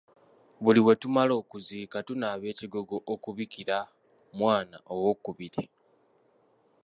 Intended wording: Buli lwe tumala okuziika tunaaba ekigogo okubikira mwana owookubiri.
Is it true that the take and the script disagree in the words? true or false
false